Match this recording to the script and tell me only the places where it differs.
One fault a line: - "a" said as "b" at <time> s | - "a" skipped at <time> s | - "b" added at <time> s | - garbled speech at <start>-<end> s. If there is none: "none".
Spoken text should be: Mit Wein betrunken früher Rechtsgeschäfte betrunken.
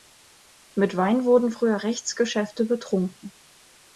- "betrunken" said as "wurden" at 1.2 s